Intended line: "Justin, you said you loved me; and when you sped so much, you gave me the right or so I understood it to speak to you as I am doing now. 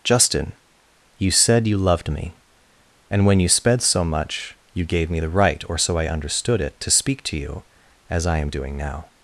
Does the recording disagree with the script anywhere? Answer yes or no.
no